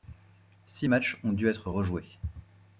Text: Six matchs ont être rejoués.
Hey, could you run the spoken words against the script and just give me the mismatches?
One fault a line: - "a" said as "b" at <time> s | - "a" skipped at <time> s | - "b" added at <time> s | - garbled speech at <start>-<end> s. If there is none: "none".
- "dû" added at 1.3 s